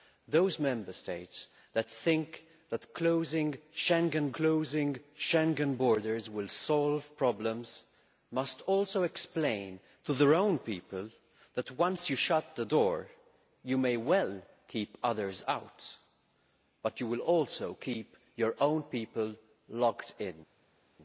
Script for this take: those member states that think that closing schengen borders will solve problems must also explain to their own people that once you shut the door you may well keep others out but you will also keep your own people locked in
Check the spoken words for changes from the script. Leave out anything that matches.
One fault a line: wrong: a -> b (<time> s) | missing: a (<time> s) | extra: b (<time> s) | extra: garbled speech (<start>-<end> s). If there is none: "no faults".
extra: closing schengen (4.3 s)